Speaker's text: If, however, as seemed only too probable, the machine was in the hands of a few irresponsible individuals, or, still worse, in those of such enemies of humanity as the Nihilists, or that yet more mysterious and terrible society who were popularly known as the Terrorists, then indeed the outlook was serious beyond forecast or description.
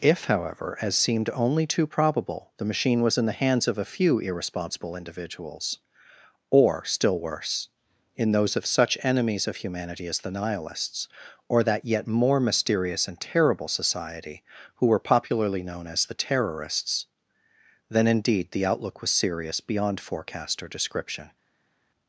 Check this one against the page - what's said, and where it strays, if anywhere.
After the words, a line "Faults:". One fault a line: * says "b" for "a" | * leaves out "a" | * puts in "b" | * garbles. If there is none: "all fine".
If, however, as seemed only too probable, the machine was in the hands of a few irresponsible individuals, or, still worse, in those of such enemies of humanity as the Nihilists, or that yet more mysterious and terrible society who were popularly known as the Terrorists, then indeed the outlook was serious beyond forecast or description.
Faults:
all fine